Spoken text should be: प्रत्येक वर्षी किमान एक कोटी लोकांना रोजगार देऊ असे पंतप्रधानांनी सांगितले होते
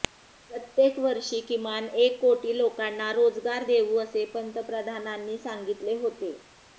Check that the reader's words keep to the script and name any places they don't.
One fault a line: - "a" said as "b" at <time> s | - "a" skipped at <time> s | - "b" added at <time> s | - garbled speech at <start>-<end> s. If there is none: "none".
none